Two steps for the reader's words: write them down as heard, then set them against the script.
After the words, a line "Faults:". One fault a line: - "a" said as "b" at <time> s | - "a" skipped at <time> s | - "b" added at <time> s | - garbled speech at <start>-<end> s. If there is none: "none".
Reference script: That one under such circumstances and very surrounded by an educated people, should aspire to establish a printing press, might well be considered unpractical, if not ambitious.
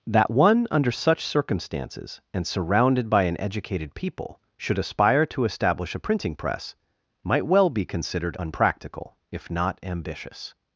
That one under such circumstances and surrounded by an educated people, should aspire to establish a printing press, might well be considered unpractical, if not ambitious.
Faults:
- "very" skipped at 2.5 s